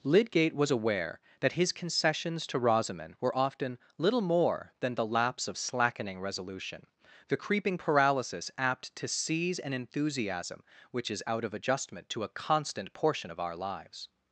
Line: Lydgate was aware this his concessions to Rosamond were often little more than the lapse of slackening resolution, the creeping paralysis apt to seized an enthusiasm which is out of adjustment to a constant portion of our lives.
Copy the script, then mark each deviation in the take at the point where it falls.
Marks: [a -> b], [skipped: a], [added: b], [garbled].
Lydgate was aware [this -> that] his concessions to Rosamond were often little more than the lapse of slackening resolution, the creeping paralysis apt to [seized -> seize] an enthusiasm which is out of adjustment to a constant portion of our lives.